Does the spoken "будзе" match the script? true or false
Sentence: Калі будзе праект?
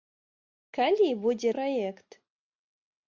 true